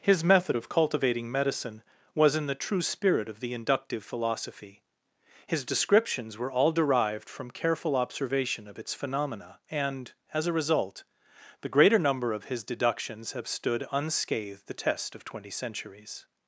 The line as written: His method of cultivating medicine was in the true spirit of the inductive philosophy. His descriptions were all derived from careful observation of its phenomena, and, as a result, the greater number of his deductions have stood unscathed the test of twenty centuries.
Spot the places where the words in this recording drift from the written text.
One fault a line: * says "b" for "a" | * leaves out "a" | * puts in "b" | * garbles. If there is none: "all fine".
all fine